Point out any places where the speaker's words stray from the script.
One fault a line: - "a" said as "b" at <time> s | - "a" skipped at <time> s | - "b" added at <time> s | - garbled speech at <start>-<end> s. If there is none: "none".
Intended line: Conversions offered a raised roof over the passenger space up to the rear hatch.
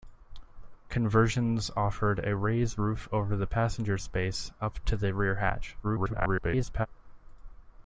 - garbled speech at 5.8-6.9 s